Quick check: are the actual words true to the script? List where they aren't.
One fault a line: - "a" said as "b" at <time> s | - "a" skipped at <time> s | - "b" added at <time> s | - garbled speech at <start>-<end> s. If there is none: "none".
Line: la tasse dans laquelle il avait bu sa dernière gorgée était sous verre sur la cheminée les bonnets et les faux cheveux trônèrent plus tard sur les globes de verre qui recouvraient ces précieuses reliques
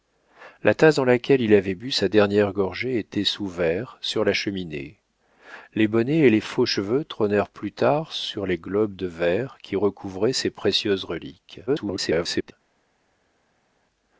- garbled speech at 11.7-12.5 s